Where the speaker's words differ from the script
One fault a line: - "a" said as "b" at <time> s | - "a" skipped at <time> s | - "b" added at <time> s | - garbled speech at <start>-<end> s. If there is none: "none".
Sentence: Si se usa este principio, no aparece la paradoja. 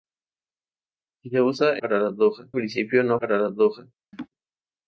- "este" said as "paradoja" at 1.8 s
- "aparece la" skipped at 3.2 s